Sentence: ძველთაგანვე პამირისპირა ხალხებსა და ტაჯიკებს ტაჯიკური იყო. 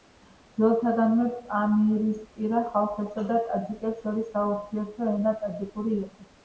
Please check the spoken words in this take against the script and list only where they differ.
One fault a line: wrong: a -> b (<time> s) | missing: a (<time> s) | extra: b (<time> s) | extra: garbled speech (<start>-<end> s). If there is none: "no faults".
extra: შორის საურთიერთო ენა (4.1 s)